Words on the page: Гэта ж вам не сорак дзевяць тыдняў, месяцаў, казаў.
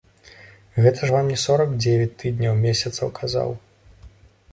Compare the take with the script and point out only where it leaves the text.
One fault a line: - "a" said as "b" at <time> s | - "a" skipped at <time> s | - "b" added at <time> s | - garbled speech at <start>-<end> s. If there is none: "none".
none